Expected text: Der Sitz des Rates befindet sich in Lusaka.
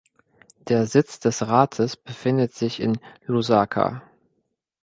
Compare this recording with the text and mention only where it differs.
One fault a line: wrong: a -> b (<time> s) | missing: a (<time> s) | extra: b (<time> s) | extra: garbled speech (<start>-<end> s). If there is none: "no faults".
no faults